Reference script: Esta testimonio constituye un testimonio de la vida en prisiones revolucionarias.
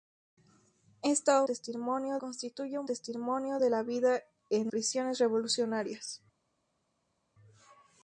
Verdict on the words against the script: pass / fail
pass